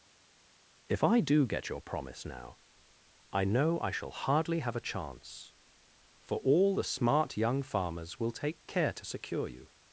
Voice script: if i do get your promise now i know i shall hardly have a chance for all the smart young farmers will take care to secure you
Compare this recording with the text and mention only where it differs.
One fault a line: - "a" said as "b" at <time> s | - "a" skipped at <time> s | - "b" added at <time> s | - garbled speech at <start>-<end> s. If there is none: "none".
none